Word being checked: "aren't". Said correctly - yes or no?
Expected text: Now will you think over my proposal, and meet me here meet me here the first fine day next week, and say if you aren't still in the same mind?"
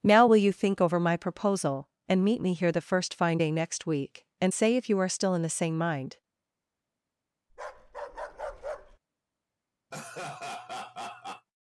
no